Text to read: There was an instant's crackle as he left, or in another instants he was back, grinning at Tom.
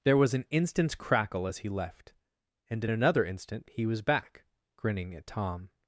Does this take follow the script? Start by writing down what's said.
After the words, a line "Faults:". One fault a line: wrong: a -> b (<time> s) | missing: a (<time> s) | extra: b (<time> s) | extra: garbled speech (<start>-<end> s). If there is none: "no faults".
There was an instant's crackle as he left, and in another instant he was back, grinning at Tom.
Faults:
wrong: or -> and (2.7 s)
wrong: instants -> instant (3.2 s)